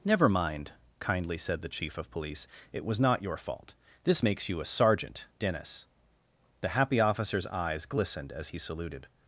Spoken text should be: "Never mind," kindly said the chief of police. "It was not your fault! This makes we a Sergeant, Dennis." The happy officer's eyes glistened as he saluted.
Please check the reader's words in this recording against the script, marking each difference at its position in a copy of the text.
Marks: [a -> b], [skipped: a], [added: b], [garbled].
"Never mind," kindly said the chief of police. "It was not your fault! This makes [we -> you] a Sergeant, Dennis." The happy officer's eyes glistened as he saluted.